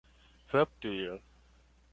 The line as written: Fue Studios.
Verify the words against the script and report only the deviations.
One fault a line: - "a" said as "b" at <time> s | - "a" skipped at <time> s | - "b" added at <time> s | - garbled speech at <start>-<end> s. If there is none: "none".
none